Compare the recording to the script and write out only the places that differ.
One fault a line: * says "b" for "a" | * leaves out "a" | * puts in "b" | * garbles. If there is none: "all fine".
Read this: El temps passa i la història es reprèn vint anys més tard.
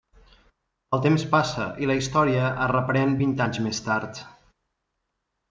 all fine